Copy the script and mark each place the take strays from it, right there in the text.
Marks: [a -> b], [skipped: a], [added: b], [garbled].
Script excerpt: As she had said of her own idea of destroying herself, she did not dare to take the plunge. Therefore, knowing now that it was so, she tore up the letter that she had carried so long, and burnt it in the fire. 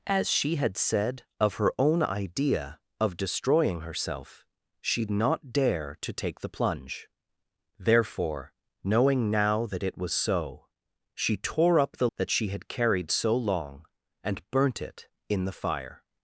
As she had said of her own idea of destroying herself, she [skipped: did] not dare to take the plunge. Therefore, knowing now that it was so, she tore up the [skipped: letter] that she had carried so long, and burnt it in the fire.